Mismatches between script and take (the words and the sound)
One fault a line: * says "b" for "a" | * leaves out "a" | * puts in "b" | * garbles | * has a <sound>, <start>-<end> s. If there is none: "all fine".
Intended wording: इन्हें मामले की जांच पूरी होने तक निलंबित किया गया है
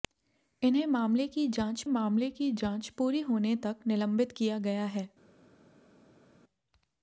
* puts in "मामले की जांच"